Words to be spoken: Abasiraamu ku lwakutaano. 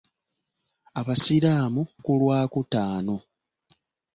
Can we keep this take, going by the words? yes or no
yes